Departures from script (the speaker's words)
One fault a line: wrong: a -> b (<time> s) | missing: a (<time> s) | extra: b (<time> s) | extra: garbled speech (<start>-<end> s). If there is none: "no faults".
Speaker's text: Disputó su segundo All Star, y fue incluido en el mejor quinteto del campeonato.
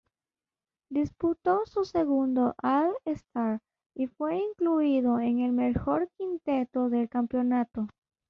no faults